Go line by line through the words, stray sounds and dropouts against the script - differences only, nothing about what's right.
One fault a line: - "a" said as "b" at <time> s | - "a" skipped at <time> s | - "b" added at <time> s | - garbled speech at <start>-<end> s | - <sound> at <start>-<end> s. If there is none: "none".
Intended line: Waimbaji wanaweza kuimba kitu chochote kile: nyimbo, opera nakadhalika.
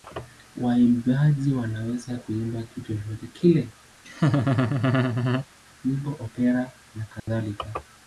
- laugh at 4.0-5.5 s
- dropout at 7.2-7.3 s